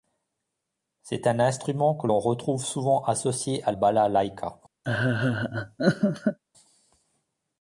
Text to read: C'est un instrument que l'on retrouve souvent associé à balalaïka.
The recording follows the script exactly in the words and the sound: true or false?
false